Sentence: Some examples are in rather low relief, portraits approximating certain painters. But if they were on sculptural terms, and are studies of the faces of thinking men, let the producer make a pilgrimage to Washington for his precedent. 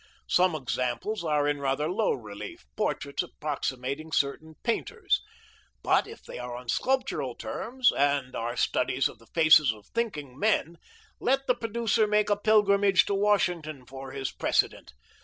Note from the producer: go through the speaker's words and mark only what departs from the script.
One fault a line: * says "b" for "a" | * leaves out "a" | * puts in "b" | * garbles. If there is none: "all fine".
* says "are" for "were"